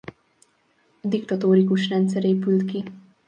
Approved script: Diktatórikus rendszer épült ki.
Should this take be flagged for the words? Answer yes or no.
no